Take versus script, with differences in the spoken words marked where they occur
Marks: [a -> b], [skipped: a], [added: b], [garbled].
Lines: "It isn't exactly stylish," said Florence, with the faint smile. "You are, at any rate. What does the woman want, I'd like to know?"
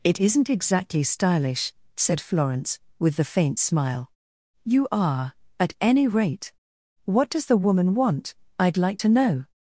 "It isn't exactly stylish," said Florence, with the faint smile. "You are, at any rate. What does the woman want, I'd like to know?"